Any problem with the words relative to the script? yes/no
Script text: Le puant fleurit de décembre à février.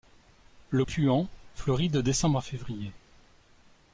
no